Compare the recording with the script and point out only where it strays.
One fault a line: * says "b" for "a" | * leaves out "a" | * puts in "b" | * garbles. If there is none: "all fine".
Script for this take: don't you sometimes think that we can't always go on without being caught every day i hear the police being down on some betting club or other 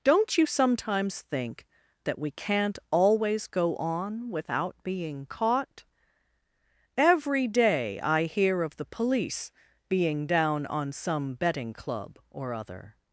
* puts in "of"